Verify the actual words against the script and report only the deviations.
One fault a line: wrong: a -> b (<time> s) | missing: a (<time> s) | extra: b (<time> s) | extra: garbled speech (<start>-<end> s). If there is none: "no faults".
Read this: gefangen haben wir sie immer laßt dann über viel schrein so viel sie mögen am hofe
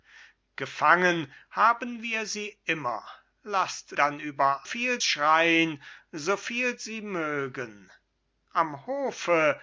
no faults